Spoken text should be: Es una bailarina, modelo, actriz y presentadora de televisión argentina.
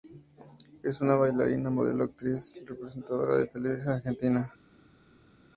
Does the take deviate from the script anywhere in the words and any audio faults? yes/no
no